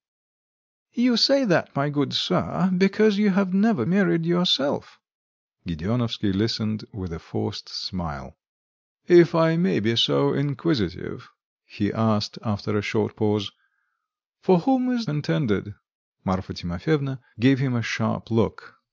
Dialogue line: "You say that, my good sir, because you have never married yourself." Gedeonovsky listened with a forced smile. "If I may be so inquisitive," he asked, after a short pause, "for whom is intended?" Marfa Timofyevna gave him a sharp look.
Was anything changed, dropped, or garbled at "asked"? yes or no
no